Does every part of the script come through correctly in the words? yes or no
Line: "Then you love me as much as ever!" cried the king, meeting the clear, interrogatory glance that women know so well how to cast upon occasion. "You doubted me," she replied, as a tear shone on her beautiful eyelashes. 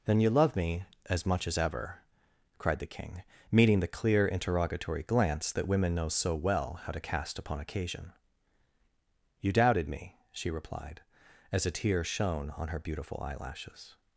yes